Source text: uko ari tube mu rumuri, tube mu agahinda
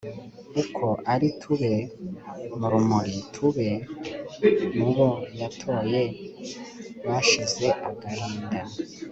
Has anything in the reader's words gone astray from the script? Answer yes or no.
yes